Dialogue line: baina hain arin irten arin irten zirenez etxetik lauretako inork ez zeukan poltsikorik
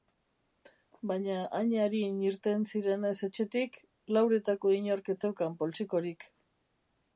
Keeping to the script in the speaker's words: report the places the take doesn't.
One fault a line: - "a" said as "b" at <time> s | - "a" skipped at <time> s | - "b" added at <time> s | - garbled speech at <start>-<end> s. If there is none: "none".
- "arin irten" skipped at 2.6 s